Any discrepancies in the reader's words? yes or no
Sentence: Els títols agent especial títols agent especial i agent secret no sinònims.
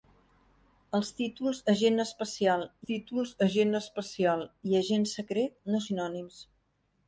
no